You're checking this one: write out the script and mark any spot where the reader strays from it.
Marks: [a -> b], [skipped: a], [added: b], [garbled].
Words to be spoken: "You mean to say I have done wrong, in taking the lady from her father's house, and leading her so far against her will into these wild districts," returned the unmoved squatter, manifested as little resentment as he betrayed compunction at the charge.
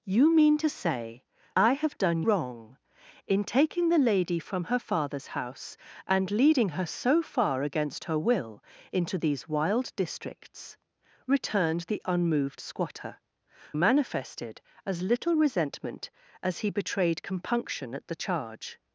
"You mean to say I have done wrong, in taking the lady from her father's house, and leading her so far against her will into these wild districts," returned the unmoved squatter, manifested as little resentment as he betrayed compunction at the charge.